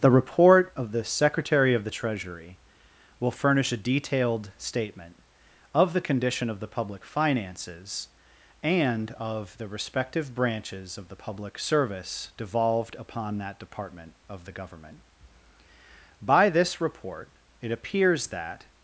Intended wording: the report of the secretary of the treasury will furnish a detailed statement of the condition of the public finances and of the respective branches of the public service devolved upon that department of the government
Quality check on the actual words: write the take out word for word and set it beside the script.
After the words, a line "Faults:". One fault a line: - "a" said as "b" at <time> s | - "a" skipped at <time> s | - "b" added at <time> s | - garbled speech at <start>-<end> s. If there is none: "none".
the report of the secretary of the treasury will furnish a detailed statement of the condition of the public finances and of the respective branches of the public service devolved upon that department of the government by this report it appears that
Faults:
- "by this report it appears that" added at 16.2 s